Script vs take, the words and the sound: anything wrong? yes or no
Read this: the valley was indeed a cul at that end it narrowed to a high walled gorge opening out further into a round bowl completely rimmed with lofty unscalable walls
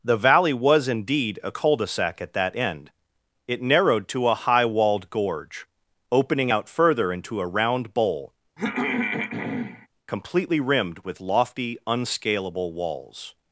yes